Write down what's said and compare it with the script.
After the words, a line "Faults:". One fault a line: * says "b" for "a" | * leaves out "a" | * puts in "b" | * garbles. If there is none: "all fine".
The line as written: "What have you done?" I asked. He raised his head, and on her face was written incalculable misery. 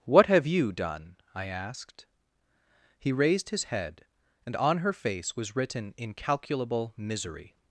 "What have you done?" I asked. He raised his head, and on her face was written incalculable misery.
Faults:
all fine